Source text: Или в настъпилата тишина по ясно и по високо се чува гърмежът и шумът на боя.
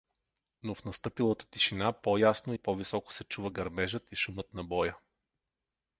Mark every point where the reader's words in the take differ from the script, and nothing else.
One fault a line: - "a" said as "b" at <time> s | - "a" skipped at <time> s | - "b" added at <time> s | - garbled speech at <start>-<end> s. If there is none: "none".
- "Или" said as "Но" at 0.6 s